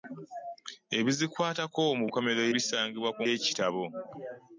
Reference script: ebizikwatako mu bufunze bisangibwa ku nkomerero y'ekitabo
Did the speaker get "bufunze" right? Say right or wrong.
wrong